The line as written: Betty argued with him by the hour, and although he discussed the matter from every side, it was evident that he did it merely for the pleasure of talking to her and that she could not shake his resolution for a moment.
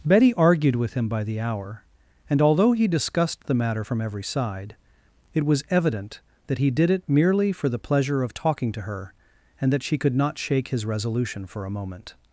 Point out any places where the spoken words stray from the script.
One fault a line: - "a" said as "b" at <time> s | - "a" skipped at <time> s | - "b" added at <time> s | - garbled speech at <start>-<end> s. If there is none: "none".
none